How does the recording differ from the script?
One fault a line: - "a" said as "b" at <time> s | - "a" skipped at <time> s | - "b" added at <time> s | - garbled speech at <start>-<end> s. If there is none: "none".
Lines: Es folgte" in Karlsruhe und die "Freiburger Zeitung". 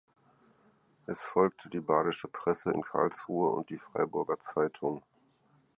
- "die Badische Presse" added at 1.7 s